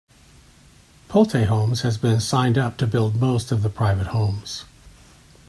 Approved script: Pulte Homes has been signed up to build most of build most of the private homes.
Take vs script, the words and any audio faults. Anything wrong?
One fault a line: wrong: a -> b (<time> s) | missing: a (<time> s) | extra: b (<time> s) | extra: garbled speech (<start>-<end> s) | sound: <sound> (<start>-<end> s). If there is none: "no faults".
missing: build most of (3.6 s)